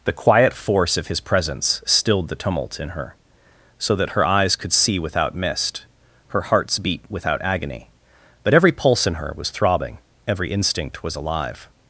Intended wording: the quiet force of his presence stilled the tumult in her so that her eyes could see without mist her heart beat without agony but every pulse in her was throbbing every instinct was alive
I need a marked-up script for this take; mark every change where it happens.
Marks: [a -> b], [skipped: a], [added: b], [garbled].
the quiet force of his presence stilled the tumult in her so that her eyes could see without mist her [heart -> hearts] beat without agony but every pulse in her was throbbing every instinct was alive